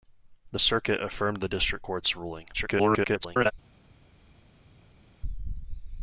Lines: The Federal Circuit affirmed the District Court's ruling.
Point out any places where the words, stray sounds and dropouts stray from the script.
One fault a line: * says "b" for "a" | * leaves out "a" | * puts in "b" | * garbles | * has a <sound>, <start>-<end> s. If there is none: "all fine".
* leaves out "Federal"
* garbles